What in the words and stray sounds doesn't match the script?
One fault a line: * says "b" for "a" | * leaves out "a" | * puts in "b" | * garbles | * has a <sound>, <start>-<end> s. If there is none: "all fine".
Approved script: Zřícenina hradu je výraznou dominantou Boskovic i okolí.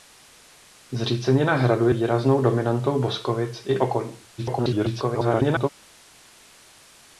* leaves out "je"
* garbles